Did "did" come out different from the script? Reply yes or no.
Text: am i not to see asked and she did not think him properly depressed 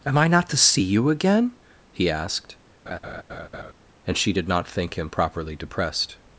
no